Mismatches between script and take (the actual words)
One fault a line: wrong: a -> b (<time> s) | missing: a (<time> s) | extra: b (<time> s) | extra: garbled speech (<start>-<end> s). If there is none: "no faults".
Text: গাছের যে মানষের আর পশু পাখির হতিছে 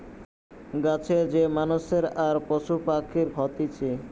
no faults